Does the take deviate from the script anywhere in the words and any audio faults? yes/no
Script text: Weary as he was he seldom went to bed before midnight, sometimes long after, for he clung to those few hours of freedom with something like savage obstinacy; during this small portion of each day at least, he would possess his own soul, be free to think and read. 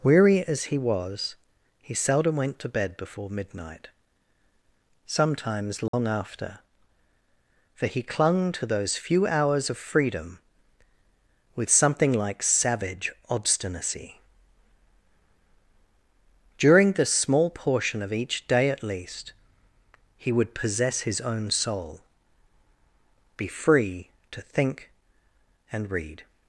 yes